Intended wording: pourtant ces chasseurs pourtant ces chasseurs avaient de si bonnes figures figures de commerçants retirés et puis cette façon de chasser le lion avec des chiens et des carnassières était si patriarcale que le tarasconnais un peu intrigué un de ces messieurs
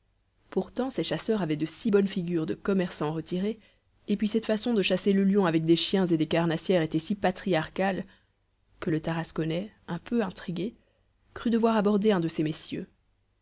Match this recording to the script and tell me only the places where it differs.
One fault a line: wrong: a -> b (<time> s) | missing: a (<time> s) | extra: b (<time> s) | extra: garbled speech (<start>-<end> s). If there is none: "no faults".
missing: pourtant ces chasseurs (1.4 s)
missing: figures (2.5 s)
extra: crut devoir aborder (11.3 s)